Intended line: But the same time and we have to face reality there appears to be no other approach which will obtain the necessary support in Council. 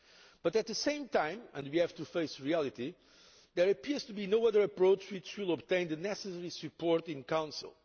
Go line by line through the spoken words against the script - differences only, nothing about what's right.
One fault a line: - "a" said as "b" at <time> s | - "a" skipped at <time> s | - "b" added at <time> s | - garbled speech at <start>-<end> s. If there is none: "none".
- "at" added at 0.6 s